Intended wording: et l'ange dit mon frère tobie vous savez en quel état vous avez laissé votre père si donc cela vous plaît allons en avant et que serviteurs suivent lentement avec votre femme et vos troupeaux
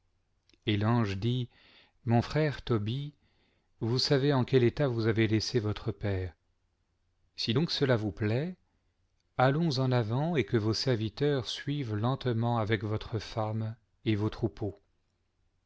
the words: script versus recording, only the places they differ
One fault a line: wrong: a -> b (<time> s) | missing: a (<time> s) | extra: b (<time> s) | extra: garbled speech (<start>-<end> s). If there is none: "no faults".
extra: vos (10.6 s)